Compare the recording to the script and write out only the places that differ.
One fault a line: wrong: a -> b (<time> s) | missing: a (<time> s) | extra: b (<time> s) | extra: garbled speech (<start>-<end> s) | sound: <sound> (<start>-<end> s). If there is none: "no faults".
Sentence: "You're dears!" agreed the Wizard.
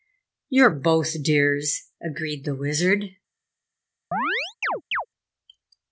extra: both (0.7 s)
sound: chirp (4.1-5.1 s)